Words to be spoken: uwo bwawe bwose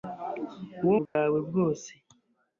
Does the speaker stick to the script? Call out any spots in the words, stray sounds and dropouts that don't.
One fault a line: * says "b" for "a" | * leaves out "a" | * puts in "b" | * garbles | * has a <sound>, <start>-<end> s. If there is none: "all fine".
* has a dropout, 1.1-1.2 s